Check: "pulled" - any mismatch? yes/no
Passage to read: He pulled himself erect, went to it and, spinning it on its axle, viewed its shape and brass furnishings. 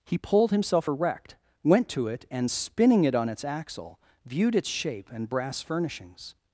no